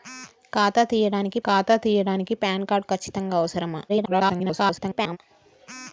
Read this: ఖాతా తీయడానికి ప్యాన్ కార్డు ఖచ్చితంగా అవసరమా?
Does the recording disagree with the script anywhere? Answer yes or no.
yes